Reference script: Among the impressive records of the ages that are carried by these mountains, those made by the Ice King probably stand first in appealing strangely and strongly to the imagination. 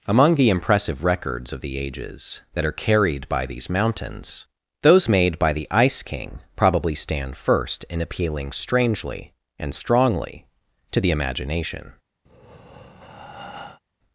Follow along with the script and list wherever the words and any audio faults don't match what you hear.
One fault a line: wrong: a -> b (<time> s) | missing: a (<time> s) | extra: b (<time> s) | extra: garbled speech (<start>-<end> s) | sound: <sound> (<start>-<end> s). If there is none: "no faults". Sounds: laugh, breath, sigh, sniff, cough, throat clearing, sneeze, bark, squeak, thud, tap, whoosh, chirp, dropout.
sound: breath (12.3-13.8 s)